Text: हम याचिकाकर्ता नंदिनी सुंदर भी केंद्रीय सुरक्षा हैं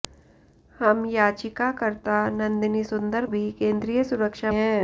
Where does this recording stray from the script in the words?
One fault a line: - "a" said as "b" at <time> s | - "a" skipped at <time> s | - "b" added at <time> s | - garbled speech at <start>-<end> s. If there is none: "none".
none